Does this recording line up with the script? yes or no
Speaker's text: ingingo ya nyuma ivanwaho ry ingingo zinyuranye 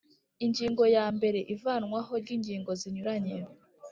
no